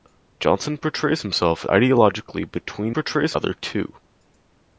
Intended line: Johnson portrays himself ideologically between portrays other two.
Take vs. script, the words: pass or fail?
pass